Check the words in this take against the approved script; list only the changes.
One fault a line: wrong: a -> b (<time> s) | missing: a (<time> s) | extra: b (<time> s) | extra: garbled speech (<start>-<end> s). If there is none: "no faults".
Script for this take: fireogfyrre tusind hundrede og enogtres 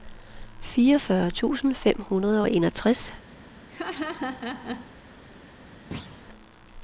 extra: fem (1.8 s)